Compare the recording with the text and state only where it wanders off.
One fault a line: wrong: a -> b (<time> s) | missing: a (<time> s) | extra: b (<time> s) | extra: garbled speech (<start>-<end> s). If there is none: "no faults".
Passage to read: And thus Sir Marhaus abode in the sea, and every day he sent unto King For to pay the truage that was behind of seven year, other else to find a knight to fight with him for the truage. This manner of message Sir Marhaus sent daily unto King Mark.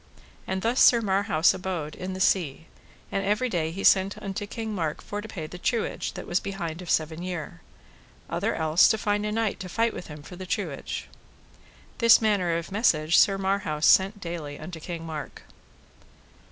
extra: Mark (4.7 s)